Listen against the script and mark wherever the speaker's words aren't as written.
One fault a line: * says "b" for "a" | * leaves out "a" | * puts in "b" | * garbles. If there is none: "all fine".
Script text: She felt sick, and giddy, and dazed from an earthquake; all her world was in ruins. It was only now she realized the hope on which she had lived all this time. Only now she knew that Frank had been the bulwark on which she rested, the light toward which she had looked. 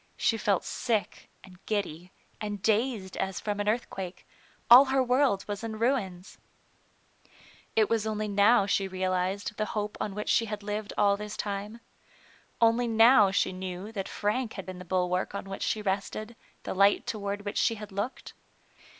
* puts in "as"